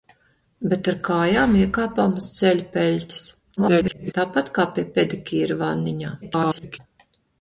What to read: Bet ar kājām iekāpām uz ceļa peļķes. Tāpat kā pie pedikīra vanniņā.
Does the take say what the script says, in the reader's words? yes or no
no